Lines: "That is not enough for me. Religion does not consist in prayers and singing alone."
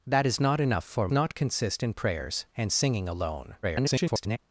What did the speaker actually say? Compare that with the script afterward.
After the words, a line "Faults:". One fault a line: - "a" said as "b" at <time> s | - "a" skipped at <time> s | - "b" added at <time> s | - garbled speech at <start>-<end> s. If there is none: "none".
"That is not enough for not consist in prayers and singing alone." [garbled]
Faults:
- "me Religion does" skipped at 1.1 s
- garbled speech at 3.6-4.4 s